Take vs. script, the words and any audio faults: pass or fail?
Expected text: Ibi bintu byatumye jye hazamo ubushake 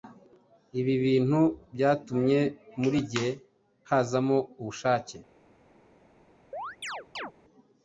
fail